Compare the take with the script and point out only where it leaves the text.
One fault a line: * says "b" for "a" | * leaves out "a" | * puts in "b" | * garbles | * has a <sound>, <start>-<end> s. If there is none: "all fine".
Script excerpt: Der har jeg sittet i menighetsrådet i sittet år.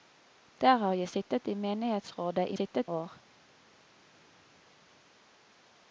all fine